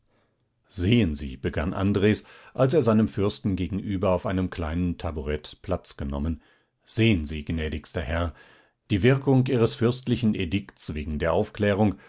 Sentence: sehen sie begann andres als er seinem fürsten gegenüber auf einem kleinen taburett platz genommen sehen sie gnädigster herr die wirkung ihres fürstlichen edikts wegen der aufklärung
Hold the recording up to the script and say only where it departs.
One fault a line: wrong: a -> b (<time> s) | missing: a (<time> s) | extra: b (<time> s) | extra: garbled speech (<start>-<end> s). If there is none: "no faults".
no faults